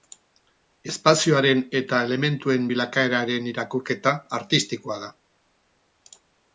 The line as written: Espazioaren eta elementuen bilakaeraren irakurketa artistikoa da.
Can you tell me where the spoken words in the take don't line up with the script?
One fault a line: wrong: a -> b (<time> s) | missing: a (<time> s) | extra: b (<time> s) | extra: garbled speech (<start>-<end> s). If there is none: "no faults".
no faults